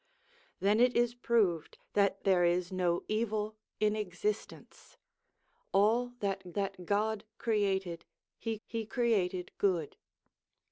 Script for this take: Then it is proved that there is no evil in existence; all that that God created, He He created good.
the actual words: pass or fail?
pass